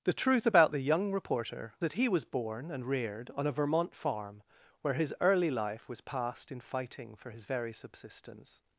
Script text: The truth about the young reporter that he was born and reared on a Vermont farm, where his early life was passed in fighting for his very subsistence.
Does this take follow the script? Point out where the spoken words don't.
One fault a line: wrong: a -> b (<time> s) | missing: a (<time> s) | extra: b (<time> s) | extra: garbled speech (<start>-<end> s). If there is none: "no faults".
no faults